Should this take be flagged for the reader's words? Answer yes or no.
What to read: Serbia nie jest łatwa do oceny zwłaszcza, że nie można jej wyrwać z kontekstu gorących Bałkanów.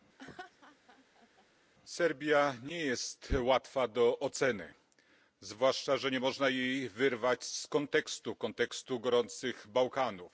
no